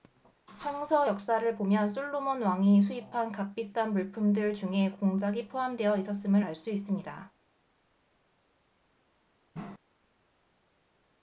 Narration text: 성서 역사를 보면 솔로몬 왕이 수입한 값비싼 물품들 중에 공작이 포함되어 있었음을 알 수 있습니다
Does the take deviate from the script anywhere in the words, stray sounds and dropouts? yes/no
no